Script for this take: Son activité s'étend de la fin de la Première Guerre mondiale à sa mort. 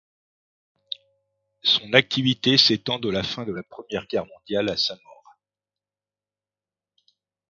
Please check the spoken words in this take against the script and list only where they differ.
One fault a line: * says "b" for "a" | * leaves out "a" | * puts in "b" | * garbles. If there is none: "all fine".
all fine